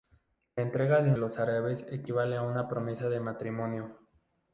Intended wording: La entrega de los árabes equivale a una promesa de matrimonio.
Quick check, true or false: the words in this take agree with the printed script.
true